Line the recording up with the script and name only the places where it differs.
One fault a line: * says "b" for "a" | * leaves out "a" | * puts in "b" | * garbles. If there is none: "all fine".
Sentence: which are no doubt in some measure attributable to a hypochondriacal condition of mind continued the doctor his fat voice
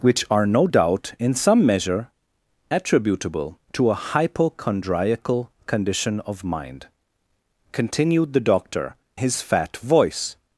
all fine